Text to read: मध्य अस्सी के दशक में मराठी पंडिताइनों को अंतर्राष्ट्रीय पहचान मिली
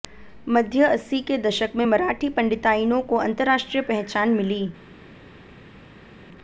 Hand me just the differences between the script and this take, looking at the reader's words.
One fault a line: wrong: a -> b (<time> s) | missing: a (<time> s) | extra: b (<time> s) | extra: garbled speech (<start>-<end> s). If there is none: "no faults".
no faults